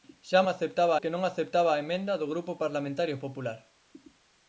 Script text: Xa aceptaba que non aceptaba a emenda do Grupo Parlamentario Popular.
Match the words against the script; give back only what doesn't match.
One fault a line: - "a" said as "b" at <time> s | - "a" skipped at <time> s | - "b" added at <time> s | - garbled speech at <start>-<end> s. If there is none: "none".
none